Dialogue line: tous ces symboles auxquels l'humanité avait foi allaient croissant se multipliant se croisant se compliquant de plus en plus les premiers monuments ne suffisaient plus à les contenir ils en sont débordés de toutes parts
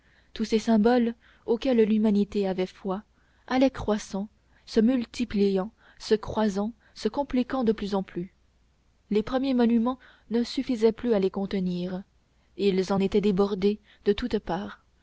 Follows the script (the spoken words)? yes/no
no